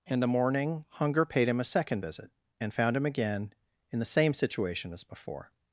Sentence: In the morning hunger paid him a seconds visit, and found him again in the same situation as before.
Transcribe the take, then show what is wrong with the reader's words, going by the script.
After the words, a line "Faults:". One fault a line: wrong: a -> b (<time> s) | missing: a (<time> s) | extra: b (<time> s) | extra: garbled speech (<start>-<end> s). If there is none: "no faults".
In the morning hunger paid him a second visit, and found him again in the same situation as before.
Faults:
wrong: seconds -> second (1.6 s)